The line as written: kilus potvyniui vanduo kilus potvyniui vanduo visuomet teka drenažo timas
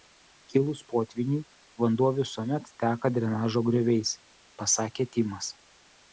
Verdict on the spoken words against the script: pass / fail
fail